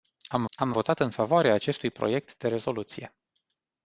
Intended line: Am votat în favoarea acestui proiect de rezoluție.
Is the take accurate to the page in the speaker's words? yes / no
no